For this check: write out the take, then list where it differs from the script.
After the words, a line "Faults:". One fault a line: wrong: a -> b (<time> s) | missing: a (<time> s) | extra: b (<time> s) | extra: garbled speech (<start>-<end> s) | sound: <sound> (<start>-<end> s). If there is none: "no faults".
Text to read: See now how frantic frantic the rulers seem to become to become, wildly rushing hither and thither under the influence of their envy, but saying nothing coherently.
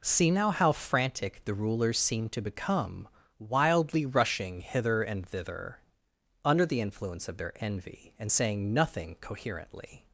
See now how frantic the rulers seem to become, wildly rushing hither and thither under the influence of their envy, and saying nothing coherently.
Faults:
missing: frantic (1.4 s)
missing: to become (3.1 s)
wrong: but -> and (8.2 s)